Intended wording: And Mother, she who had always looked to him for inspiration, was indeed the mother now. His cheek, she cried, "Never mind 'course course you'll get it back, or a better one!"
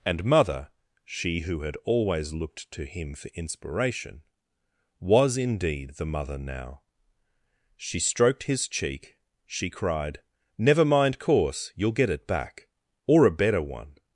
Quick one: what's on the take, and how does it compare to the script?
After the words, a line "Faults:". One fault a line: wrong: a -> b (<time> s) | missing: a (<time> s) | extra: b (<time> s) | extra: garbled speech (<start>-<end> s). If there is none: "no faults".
And Mother, she who had always looked to him for inspiration, was indeed the mother now. She stroked his cheek, she cried, "Never mind 'course you'll get it back, or a better one!"
Faults:
extra: She stroked (7.8 s)
missing: course (11.7 s)